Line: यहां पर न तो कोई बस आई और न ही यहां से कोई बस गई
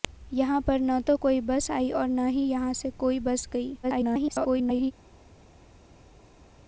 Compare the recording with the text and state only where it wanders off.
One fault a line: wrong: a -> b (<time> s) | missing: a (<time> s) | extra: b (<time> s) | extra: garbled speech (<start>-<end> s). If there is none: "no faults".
extra: garbled speech (3.8-4.9 s)